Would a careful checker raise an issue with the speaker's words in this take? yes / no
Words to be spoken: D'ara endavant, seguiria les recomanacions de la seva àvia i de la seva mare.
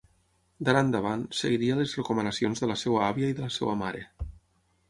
no